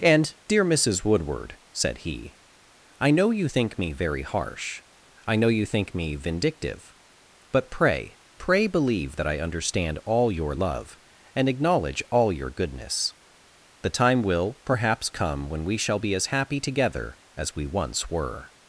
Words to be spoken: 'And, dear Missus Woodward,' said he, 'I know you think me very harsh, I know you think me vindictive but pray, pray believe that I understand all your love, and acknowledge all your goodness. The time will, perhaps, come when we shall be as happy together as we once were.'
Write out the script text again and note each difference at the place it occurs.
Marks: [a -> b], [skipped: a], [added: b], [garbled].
'And, dear Missus Woodward,' said he, 'I know you think me very harsh, I know you think me vindictive but pray, pray believe that I understand all your love, and acknowledge all your goodness. The time will, perhaps, come when we shall be as happy together as we once were.'